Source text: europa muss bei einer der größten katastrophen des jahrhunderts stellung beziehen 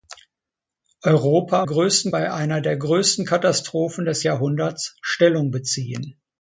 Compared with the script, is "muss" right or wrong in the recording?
wrong